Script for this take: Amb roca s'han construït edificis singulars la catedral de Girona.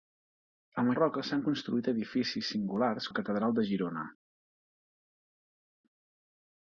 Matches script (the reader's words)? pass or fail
pass